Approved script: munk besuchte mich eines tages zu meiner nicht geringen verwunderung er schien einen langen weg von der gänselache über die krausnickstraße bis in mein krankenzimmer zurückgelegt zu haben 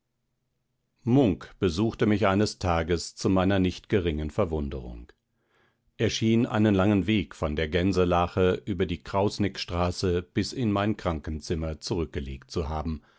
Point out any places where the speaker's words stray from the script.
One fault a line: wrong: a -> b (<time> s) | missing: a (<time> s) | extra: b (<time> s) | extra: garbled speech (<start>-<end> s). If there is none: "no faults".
no faults